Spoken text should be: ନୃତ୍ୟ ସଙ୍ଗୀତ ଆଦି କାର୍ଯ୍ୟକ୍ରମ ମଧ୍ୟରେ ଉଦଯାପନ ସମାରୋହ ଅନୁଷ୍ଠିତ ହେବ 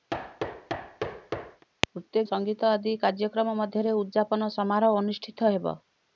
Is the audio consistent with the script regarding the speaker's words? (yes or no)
yes